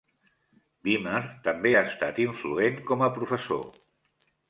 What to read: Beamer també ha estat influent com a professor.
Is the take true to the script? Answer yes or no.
yes